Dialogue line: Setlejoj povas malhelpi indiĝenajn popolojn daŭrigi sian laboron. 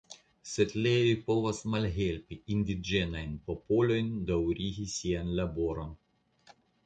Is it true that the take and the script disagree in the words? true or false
false